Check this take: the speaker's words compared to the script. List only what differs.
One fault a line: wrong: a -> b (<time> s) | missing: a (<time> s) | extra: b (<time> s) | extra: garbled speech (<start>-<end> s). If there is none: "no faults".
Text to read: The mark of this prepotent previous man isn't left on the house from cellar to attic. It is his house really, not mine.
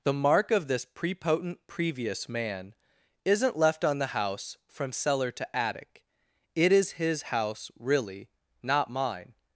no faults